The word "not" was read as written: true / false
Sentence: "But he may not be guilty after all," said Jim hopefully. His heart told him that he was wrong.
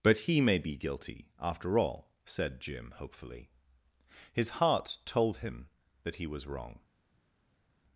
false